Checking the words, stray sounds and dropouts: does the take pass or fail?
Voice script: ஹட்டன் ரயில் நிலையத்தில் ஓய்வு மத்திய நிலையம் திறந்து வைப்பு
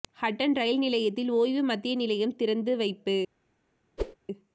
fail